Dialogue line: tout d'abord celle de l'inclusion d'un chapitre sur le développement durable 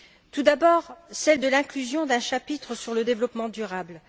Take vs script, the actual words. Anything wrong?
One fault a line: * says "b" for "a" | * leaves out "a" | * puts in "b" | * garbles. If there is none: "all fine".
all fine